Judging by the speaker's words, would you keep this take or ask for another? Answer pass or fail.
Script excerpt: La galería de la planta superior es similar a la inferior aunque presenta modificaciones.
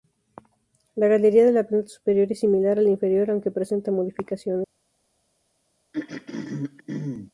pass